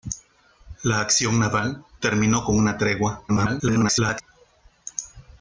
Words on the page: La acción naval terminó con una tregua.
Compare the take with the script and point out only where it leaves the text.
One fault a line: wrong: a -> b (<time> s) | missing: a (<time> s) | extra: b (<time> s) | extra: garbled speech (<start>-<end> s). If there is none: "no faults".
extra: garbled speech (3.3-4.2 s)